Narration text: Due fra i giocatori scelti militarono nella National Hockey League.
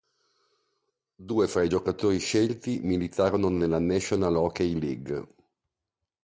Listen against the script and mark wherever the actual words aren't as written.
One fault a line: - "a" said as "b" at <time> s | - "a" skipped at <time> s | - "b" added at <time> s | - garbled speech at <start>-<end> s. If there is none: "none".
none